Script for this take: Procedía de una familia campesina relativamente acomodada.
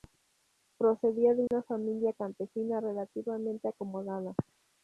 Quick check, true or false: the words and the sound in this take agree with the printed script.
false